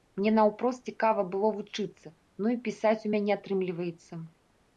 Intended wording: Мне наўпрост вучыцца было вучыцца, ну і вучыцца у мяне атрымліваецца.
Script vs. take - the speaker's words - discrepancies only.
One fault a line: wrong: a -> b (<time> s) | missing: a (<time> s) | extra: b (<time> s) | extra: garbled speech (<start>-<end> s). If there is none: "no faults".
wrong: вучыцца -> цікава (0.9 s)
wrong: вучыцца -> пісаць (2.7 s)